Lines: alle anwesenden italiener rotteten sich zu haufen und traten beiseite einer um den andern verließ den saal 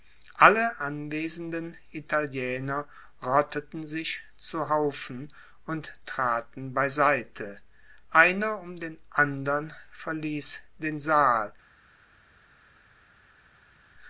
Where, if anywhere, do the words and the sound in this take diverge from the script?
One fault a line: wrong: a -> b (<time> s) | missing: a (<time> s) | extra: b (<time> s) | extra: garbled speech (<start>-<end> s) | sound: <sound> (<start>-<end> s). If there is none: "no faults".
no faults